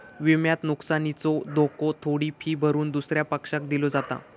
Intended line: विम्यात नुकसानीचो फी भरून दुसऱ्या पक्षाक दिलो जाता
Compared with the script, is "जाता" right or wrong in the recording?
right